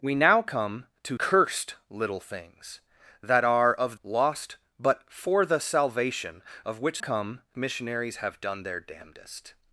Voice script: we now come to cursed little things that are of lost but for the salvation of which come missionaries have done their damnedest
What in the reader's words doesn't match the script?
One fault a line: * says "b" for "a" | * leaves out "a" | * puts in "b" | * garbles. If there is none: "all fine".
all fine